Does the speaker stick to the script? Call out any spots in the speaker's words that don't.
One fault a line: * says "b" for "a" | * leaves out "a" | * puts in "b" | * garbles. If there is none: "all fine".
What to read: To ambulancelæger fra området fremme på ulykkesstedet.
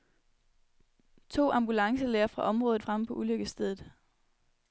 all fine